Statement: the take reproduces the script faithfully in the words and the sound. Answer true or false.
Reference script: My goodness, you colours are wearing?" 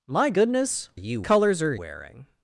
true